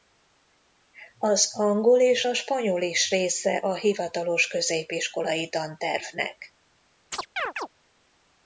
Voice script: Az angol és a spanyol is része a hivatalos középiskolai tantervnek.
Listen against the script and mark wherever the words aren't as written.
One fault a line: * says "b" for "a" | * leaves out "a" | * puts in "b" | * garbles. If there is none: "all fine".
all fine